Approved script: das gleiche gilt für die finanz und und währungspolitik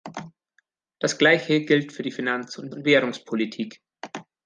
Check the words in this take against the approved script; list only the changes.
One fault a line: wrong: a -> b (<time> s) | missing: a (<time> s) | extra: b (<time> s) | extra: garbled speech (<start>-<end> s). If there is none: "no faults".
no faults